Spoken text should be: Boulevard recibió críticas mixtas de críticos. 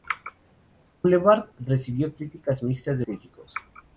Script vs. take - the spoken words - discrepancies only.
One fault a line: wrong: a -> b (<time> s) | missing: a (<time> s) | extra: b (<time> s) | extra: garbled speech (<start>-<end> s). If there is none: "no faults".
no faults